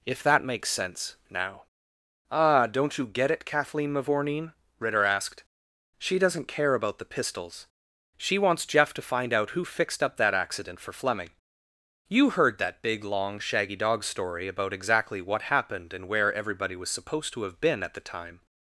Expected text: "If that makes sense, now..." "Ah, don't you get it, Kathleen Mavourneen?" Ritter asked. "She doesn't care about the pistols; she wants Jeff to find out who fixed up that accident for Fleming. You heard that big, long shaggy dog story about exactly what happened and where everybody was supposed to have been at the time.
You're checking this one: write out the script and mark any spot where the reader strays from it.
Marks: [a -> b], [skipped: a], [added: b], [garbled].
"If that makes sense, now..." "Ah, don't you get it, Kathleen Mavourneen?" Ritter asked. "She doesn't care about the pistols; she wants Jeff to find out who fixed up that accident for Fleming. You heard that big, long shaggy dog story about exactly what happened and where everybody was supposed to have been at the time.